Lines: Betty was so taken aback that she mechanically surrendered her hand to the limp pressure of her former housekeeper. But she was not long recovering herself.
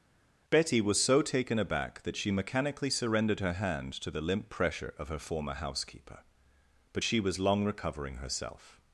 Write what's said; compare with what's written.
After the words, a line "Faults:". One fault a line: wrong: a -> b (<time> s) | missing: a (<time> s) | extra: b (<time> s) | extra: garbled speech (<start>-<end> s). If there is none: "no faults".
Betty was so taken aback that she mechanically surrendered her hand to the limp pressure of her former housekeeper. But she was long recovering herself.
Faults:
missing: not (7.4 s)